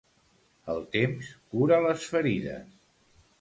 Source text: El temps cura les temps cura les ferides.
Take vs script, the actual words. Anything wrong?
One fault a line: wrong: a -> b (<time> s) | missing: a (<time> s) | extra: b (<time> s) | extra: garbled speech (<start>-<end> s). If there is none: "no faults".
missing: temps cura les (2.1 s)